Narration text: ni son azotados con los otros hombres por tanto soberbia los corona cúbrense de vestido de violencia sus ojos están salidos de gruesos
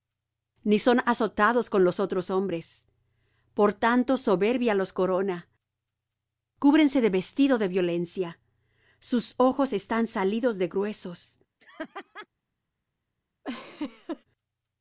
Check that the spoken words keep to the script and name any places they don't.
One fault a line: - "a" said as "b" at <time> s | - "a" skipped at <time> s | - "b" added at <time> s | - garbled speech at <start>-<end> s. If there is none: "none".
none